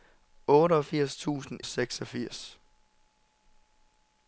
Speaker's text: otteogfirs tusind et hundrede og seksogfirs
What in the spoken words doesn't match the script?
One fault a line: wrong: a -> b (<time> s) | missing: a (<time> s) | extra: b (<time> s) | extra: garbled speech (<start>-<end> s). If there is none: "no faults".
missing: et hundrede og (1.6 s)